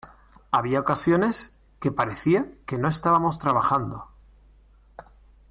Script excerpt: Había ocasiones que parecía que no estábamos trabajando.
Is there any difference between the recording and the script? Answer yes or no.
no